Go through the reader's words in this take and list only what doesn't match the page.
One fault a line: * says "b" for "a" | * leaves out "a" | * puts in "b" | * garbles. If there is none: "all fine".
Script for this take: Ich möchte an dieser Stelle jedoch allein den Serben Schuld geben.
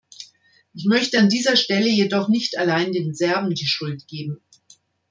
* puts in "nicht"
* puts in "die"